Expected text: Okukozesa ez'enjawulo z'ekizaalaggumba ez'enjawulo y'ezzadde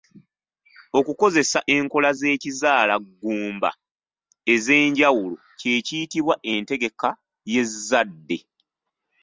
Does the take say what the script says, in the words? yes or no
no